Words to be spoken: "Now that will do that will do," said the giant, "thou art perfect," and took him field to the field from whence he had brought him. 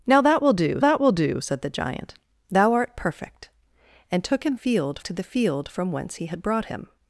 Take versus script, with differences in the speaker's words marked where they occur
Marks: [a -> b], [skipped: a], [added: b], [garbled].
"Now that will do that will do," said the giant, "thou art perfect," and took him field to the field from whence he had brought him.